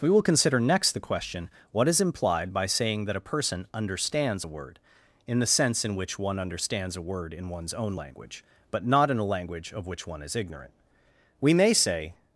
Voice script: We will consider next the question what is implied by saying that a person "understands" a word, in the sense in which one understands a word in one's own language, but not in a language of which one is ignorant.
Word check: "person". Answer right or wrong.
right